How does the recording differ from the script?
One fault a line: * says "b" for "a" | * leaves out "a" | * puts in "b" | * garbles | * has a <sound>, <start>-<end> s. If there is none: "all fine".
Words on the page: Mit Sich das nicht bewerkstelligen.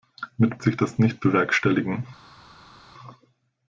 all fine